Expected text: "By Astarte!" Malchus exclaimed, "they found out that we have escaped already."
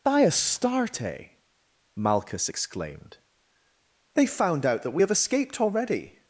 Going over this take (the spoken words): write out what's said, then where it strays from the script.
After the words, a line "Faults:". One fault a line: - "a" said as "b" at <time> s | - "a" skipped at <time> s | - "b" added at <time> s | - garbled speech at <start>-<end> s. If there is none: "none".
"By Astarte!" Malchus exclaimed, "they found out that we have escaped already."
Faults:
none